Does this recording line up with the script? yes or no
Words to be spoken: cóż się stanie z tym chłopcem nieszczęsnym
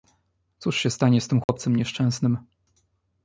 yes